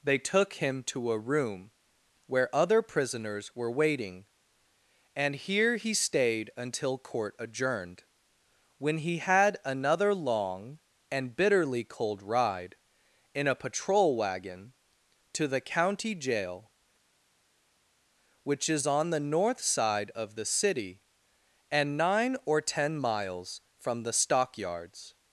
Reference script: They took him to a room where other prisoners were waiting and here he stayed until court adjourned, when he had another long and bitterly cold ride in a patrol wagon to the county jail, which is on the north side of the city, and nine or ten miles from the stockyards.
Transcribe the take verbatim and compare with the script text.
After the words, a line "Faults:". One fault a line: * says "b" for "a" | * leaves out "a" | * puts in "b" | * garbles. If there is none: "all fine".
They took him to a room where other prisoners were waiting and here he stayed until court adjourned, when he had another long and bitterly cold ride in a patrol wagon to the county jail, which is on the north side of the city, and nine or ten miles from the stockyards.
Faults:
all fine